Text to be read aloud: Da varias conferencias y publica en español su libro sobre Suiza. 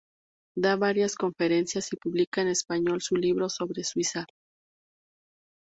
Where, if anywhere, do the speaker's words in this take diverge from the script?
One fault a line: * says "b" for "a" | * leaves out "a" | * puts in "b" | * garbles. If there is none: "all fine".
all fine